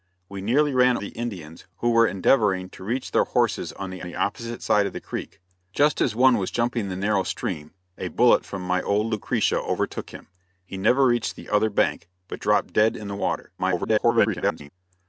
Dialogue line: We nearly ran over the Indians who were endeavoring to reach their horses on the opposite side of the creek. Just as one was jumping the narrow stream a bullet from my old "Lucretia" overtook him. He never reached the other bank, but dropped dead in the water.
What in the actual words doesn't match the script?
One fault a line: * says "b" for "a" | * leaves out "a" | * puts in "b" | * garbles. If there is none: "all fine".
* leaves out "over"
* puts in "the"
* garbles